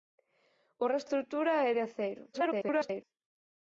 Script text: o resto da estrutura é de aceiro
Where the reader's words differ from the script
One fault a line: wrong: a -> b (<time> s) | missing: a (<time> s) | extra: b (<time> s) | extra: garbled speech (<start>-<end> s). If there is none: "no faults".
missing: da (1.1 s)
extra: garbled speech (2.3-3.0 s)